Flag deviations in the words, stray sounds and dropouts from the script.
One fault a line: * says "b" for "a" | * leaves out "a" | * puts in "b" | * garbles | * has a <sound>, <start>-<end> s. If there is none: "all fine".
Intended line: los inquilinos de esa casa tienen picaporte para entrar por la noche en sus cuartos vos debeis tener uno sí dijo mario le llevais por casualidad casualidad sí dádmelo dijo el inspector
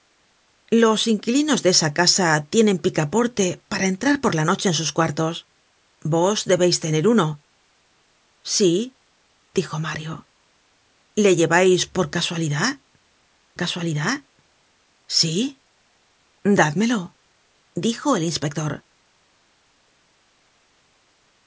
all fine